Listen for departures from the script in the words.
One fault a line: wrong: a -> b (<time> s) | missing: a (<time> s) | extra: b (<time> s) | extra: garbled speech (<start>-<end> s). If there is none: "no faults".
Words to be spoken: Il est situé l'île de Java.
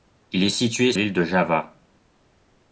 no faults